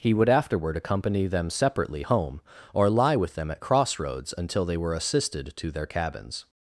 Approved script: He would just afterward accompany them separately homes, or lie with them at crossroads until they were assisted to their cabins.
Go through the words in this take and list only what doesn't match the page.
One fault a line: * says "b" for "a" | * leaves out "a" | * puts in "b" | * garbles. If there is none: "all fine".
* leaves out "just"
* says "home" for "homes"